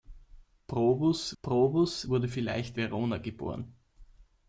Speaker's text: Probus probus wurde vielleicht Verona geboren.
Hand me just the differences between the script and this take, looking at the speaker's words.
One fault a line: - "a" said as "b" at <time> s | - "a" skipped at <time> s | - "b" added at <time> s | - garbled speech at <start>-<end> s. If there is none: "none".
none